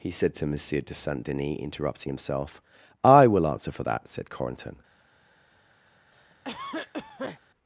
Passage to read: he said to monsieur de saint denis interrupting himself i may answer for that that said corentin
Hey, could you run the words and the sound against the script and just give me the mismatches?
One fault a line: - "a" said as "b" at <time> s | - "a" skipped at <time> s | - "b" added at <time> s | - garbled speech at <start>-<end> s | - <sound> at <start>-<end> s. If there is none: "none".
- "may" said as "will" at 3.3 s
- "that" skipped at 4.1 s
- cough at 6.1-7.4 s